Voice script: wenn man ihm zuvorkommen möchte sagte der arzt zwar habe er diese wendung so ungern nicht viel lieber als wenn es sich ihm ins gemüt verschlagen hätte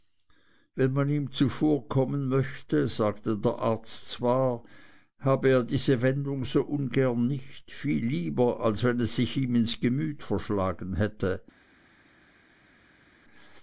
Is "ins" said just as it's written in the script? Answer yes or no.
yes